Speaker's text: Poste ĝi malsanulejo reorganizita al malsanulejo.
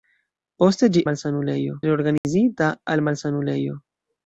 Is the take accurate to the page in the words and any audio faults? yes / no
no